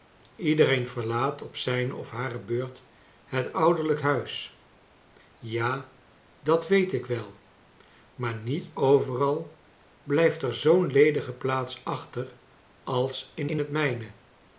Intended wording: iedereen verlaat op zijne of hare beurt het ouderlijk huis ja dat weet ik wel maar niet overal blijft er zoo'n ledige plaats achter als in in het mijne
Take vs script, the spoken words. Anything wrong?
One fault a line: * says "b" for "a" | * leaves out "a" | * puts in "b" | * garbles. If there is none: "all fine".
all fine